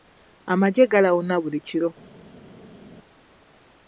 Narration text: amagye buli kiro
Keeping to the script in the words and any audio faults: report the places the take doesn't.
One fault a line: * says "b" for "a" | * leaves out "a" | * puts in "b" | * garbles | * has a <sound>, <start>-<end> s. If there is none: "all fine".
* puts in "galawuna"